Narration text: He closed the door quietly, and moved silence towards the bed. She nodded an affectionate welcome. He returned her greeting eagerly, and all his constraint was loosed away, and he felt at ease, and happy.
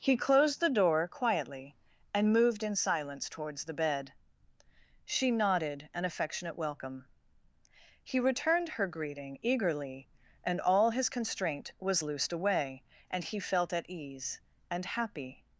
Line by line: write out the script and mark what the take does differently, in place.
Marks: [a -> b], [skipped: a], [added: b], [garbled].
He closed the door quietly, and moved [added: in] silence towards the bed. She nodded an affectionate welcome. He returned her greeting eagerly, and all his constraint was loosed away, and he felt at ease, and happy.